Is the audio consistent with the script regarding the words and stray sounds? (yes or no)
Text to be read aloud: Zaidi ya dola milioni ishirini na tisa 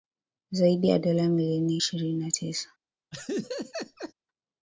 no